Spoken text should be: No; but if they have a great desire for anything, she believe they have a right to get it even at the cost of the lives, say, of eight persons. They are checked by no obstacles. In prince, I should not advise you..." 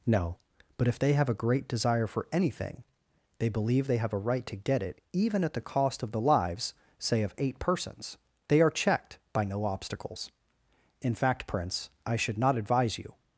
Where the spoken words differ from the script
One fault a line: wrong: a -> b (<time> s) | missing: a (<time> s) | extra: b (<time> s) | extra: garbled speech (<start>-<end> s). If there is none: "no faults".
wrong: she -> they (3.4 s)
extra: fact (11.1 s)